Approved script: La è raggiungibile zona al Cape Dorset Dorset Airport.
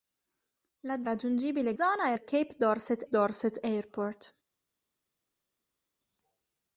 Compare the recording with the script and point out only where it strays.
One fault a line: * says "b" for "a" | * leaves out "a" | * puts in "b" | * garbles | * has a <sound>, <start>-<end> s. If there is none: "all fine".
all fine